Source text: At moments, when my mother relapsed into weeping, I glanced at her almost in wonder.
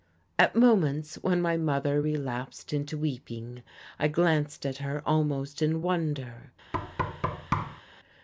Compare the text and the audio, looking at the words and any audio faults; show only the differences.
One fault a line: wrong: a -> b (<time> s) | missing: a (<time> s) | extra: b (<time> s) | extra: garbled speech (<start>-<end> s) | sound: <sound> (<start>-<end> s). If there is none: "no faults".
sound: thud (6.7-7.8 s)